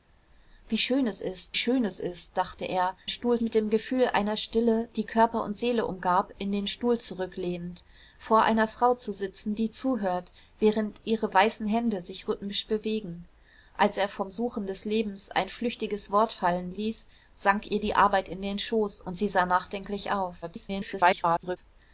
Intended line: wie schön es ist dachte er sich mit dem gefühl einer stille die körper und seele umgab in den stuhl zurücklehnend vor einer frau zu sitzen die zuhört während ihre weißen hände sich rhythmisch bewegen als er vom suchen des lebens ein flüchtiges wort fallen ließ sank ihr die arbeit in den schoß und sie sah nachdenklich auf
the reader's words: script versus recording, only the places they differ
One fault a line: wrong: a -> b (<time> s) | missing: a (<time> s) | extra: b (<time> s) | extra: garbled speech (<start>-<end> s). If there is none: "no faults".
extra: schön es ist (1.6 s)
wrong: sich -> stuhl (3.1 s)
extra: garbled speech (20.4-21.6 s)